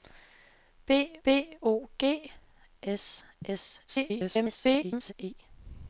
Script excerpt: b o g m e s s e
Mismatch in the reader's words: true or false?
true